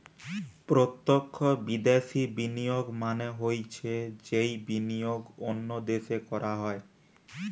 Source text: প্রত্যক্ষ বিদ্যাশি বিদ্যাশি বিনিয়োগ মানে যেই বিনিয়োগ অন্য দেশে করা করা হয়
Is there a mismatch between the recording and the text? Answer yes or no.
yes